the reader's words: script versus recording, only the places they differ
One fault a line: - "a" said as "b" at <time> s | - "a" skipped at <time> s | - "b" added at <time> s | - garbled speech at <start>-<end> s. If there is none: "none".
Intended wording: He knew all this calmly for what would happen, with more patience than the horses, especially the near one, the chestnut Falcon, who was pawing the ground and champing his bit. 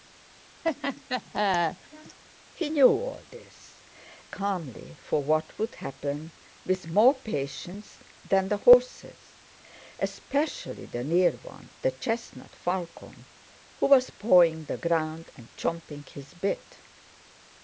none